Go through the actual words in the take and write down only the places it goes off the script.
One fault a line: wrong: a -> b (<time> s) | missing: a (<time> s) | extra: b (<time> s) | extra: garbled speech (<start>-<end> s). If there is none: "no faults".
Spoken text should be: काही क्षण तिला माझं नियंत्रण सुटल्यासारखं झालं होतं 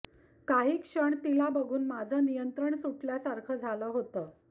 extra: बघून (1.5 s)